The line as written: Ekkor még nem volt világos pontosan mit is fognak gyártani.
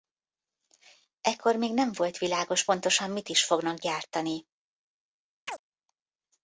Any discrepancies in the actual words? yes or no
no